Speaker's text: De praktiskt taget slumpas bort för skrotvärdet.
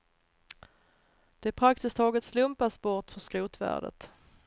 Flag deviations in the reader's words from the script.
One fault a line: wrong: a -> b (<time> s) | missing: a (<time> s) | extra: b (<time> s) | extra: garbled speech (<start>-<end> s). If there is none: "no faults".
no faults